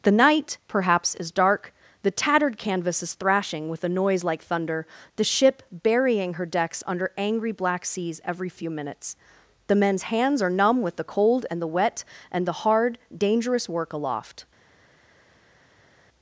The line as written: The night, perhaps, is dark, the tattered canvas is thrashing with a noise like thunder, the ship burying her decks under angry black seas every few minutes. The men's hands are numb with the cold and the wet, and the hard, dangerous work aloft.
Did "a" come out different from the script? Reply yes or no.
no